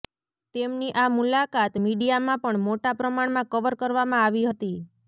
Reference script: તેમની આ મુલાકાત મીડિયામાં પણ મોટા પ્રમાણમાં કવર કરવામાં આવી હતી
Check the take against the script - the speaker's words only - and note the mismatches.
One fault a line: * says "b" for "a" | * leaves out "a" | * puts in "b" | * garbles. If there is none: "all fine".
all fine